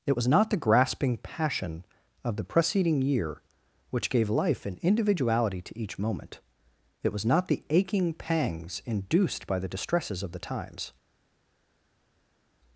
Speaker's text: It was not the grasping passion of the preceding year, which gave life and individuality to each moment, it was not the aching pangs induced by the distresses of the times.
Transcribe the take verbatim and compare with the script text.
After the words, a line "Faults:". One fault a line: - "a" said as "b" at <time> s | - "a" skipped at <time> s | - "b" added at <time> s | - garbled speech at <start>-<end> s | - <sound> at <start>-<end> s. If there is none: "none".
It was not the grasping passion of the preceding year, which gave life and individuality to each moment, it was not the aching pangs induced by the distresses of the times.
Faults:
none